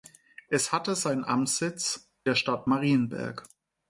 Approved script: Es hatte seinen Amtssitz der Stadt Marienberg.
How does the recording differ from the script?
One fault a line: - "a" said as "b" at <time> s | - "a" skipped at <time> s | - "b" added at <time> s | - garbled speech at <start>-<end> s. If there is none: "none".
none